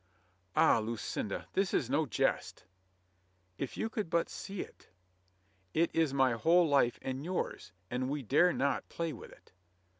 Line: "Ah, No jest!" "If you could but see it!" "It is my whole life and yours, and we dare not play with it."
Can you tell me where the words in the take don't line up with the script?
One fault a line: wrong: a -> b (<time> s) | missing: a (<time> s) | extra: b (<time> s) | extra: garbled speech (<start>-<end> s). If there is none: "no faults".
extra: Lucinda this is (0.8 s)